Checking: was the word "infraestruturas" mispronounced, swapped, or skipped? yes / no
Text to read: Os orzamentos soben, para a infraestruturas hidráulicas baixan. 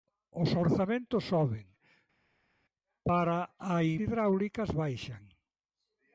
yes